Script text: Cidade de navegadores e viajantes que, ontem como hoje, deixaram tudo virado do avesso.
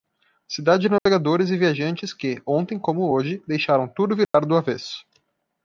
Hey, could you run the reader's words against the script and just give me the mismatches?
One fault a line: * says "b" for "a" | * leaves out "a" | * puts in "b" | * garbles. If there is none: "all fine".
all fine